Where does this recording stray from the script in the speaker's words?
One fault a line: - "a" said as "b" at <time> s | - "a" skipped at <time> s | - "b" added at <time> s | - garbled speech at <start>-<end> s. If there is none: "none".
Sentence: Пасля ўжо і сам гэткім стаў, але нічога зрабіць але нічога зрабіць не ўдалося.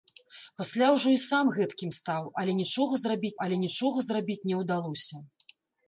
none